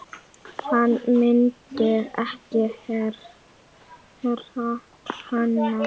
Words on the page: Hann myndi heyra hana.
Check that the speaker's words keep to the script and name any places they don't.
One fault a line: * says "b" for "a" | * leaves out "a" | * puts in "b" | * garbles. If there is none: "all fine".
* puts in "ekki"